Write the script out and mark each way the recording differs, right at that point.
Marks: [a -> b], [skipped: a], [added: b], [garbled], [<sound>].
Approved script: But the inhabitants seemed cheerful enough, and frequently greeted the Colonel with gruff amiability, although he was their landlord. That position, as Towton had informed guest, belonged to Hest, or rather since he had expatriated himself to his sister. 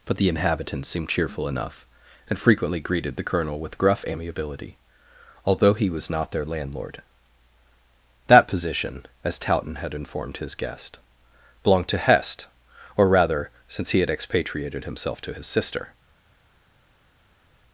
But the inhabitants seemed cheerful enough, and frequently greeted the Colonel with gruff amiability, although he was [added: not] their landlord. That position, as Towton had informed [added: his] guest, belonged to Hest, or rather since he had expatriated himself to his sister.